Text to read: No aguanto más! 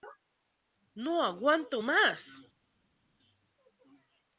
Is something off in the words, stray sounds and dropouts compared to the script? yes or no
no